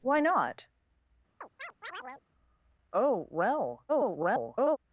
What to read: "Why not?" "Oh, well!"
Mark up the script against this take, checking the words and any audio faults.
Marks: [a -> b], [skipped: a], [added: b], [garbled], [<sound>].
"Why not?" [chirp] "Oh, well!" [garbled]